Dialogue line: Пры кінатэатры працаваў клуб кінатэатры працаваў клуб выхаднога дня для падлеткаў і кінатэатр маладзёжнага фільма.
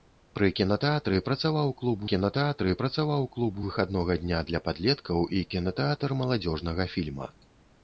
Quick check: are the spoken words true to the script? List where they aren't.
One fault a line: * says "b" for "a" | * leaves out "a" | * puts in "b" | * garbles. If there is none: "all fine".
all fine